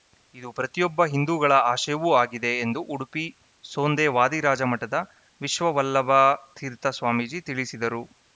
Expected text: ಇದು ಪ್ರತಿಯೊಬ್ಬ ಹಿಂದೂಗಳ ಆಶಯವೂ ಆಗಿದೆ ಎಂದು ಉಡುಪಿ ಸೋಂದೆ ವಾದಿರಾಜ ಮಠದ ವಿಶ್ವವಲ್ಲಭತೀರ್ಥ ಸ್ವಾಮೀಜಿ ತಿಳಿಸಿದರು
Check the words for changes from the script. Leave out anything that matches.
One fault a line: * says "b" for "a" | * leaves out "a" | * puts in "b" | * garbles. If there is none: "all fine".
all fine